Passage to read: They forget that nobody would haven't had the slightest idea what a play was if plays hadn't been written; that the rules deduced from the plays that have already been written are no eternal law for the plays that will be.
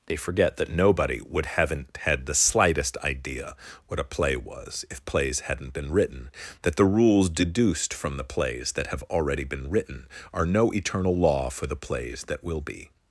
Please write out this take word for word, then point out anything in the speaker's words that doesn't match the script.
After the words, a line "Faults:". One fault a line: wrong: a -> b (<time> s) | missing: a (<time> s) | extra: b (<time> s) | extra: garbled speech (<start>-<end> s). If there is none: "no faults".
They forget that nobody would haven't had the slightest idea what a play was if plays hadn't been written; that the rules deduced from the plays that have already been written are no eternal law for the plays that will be.
Faults:
no faults